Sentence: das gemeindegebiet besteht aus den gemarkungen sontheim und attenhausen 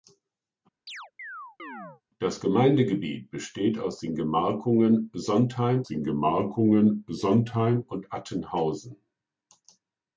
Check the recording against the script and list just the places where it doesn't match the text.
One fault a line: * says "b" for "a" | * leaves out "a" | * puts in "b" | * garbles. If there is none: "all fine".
* puts in "den gemarkungen sontheim"